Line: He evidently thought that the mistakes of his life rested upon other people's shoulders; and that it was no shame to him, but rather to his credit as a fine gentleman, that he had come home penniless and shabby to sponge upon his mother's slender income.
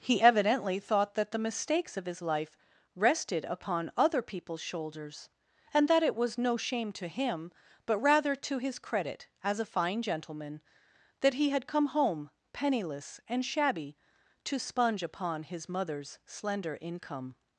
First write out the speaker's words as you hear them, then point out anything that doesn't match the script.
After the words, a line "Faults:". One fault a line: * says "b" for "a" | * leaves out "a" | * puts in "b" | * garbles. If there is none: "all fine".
He evidently thought that the mistakes of his life rested upon other people's shoulders; and that it was no shame to him, but rather to his credit as a fine gentleman, that he had come home penniless and shabby to sponge upon his mother's slender income.
Faults:
all fine